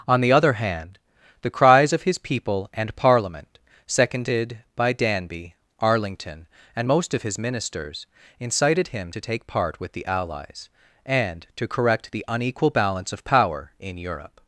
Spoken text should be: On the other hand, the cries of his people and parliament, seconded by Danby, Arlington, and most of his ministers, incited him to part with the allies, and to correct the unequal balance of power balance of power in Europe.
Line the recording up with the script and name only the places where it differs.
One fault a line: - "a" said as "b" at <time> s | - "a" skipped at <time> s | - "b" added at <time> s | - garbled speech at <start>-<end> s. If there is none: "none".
- "take" added at 9.2 s
- "balance of power" skipped at 13.7 s